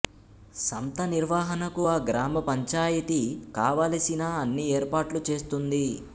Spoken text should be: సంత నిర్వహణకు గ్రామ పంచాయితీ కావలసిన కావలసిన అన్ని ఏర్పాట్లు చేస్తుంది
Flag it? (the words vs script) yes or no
yes